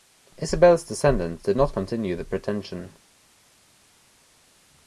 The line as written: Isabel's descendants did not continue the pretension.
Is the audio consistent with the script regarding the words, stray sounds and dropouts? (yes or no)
yes